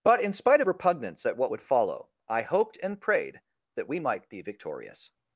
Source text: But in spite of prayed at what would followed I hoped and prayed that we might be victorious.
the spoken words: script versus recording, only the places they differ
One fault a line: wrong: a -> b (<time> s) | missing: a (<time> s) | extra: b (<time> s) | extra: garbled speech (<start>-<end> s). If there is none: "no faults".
wrong: prayed -> repugnance (0.7 s)
wrong: followed -> follow (1.6 s)